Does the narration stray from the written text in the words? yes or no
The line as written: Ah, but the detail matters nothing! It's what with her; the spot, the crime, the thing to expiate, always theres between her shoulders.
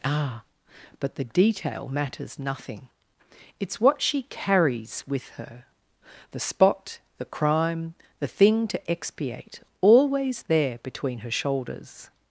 yes